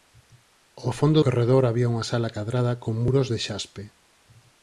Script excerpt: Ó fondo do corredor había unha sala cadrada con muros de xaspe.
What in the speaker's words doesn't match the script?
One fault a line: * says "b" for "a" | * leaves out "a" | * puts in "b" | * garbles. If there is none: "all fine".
* leaves out "do"